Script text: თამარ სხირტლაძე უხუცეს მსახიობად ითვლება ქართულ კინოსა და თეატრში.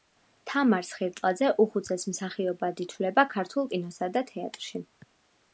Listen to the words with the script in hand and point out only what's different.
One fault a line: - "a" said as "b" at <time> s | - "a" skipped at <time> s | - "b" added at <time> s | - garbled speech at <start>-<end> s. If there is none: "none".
none